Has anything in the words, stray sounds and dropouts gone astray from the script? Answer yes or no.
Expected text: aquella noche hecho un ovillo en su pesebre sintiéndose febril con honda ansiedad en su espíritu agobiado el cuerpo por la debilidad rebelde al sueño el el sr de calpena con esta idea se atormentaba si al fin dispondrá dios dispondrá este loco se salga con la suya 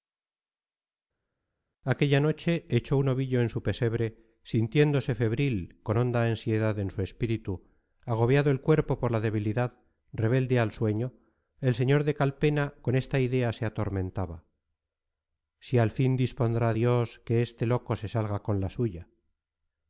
yes